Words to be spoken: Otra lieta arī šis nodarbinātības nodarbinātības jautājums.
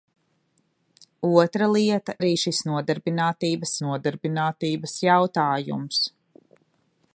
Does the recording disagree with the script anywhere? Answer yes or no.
no